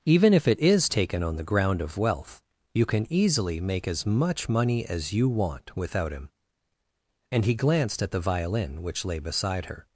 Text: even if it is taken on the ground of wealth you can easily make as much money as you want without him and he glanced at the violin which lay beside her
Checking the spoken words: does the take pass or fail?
pass